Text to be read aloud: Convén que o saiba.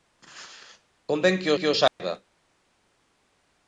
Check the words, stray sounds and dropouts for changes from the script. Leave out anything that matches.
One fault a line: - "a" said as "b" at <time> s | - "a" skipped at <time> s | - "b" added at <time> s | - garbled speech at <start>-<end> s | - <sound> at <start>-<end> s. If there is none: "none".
- "que" added at 1.6 s
- dropout at 1.9-2.0 s